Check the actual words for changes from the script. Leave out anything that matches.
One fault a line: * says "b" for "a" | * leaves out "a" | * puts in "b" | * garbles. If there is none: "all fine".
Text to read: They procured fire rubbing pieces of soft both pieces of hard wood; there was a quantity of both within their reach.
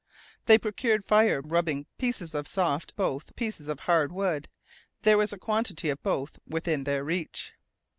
all fine